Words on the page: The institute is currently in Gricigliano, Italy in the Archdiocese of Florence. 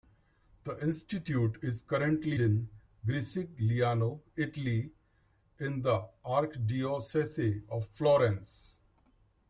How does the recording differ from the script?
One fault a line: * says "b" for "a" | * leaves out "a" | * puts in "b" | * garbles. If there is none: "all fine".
all fine